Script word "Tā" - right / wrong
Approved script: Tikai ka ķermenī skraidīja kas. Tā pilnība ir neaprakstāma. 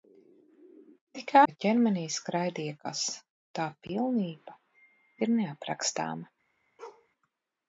right